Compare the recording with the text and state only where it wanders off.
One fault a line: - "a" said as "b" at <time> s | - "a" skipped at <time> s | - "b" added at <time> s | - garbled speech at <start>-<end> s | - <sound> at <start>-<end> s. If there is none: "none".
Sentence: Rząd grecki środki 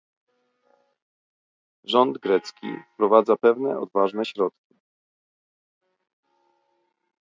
- "wprowadza pewne odważne" added at 2.9 s